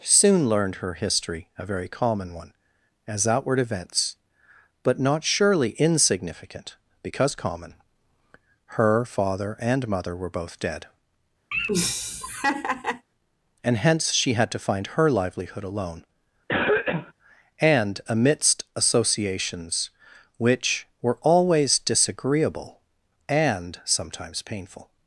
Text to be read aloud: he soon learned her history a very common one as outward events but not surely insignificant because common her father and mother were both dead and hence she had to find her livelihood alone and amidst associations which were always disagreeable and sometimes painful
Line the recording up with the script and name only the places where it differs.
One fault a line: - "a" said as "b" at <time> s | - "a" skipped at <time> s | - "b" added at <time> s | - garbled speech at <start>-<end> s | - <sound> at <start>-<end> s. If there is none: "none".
- "he" skipped at 0.0 s
- laugh at 11.5-13.1 s
- cough at 16.5-17.1 s